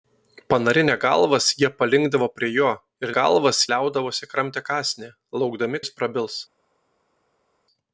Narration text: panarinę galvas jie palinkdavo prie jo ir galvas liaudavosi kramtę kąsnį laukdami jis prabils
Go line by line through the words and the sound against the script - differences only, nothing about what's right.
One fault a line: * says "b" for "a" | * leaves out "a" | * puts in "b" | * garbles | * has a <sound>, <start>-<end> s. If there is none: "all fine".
all fine